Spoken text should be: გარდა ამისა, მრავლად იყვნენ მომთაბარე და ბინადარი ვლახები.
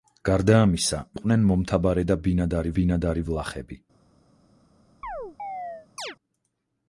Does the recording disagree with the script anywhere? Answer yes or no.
yes